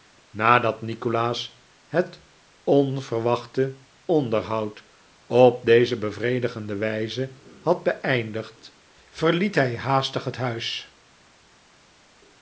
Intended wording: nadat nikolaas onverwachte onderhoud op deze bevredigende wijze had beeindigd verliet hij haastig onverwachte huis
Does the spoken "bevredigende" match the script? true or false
true